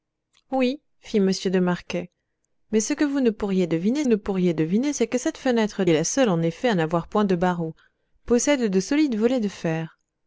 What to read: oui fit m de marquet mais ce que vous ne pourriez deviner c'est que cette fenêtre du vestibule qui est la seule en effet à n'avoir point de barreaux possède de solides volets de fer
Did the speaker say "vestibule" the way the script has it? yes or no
no